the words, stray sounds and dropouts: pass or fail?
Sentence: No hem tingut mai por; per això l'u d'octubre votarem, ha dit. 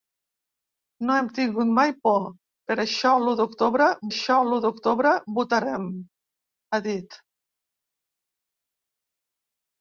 fail